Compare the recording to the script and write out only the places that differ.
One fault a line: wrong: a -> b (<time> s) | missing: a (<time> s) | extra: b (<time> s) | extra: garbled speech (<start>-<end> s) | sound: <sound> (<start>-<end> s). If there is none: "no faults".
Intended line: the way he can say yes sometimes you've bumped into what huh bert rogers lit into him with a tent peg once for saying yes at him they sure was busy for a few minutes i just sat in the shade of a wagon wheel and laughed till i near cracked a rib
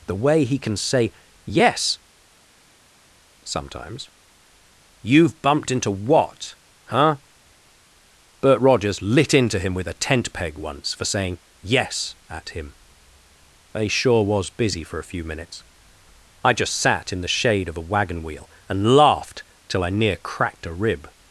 no faults